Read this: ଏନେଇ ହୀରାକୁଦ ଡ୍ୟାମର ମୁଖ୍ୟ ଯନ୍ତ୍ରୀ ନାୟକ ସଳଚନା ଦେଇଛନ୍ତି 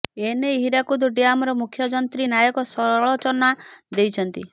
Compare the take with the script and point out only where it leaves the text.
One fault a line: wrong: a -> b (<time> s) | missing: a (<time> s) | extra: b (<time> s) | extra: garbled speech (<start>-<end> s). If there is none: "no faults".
no faults